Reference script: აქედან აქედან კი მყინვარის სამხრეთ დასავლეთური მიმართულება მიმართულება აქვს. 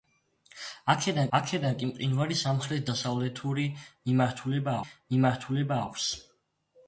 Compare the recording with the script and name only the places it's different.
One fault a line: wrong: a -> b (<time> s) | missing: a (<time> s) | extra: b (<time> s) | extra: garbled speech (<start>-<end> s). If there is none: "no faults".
no faults